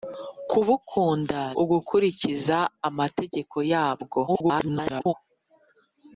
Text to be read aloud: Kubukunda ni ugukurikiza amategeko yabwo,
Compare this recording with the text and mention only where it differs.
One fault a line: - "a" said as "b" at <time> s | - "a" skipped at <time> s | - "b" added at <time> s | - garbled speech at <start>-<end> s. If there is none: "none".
- "ni" skipped at 1.4 s
- garbled speech at 4.3-5.1 s